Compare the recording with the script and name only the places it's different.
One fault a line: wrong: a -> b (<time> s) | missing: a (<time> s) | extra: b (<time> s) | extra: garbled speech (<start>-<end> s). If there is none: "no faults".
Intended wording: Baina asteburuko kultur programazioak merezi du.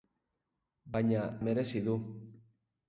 missing: asteburuko kultur programazioak (1.2 s)